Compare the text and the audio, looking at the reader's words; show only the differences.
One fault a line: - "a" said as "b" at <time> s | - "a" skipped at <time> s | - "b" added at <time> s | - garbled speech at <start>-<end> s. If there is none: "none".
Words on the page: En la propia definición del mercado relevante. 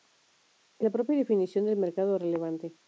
none